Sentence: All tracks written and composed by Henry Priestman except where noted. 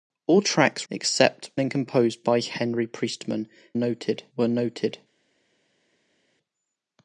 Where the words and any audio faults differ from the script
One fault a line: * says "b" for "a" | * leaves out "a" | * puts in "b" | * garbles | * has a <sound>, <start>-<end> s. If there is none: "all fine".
* says "except" for "written"
* says "noted" for "except"